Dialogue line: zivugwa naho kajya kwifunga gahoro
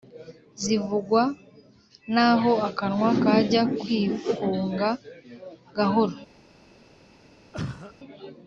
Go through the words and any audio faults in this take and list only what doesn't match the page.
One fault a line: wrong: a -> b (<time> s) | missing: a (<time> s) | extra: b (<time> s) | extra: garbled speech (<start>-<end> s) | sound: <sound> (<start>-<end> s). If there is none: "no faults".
extra: akanwa (2.7 s)
sound: cough (7.5-7.9 s)